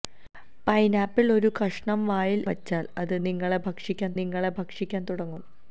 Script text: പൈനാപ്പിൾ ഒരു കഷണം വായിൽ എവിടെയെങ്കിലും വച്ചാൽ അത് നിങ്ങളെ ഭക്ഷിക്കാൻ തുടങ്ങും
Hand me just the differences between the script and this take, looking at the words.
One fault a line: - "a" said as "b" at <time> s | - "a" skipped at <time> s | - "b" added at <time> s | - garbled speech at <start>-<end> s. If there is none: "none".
- "എവിടെയെങ്കിലും" skipped at 2.4 s
- "നിങ്ങളെ ഭക്ഷിക്കാൻ" added at 4.2 s